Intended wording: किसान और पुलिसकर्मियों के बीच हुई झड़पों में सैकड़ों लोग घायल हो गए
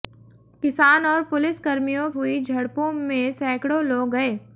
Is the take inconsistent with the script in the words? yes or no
yes